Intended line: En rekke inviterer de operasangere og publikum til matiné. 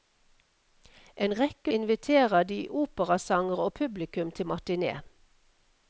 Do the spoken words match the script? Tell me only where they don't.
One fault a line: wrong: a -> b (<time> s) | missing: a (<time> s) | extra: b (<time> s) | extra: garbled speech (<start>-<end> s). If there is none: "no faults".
no faults